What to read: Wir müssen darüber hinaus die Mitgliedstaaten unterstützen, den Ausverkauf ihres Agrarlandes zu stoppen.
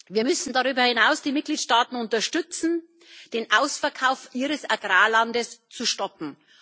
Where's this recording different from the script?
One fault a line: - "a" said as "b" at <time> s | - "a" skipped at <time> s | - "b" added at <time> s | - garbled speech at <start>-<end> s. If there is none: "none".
none